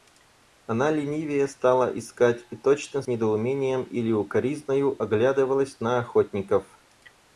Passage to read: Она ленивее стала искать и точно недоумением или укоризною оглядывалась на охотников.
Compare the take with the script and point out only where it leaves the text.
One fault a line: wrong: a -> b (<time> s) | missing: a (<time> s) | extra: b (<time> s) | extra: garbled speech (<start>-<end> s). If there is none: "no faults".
no faults